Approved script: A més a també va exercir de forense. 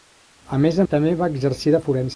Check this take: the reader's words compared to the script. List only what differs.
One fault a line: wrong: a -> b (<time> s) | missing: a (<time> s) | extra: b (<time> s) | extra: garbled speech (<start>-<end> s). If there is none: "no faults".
no faults